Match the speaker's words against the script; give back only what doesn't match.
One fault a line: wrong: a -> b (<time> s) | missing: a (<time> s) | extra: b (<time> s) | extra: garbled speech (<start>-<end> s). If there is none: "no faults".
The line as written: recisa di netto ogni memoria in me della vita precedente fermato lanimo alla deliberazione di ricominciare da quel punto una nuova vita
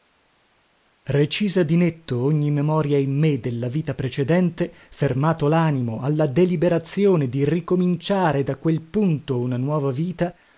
no faults